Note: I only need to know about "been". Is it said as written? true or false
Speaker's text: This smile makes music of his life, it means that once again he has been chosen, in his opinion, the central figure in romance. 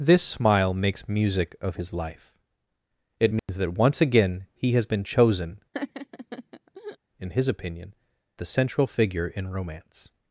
true